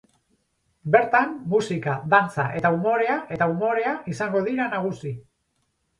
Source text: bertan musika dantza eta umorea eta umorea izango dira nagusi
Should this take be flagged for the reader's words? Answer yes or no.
no